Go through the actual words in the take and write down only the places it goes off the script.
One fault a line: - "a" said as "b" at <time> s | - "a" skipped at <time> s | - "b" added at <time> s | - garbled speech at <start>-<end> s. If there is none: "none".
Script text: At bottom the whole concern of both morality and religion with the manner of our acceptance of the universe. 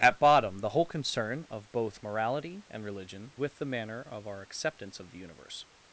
none